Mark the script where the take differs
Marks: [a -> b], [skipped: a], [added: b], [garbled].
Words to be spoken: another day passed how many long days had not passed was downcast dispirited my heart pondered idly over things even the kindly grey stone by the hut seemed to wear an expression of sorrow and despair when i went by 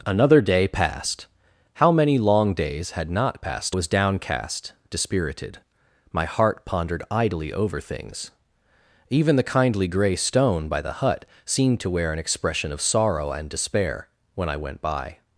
another day passed how many long days had not passed was downcast dispirited my heart pondered idly over things even the kindly grey stone by the hut seemed to wear an expression of sorrow and despair when i went by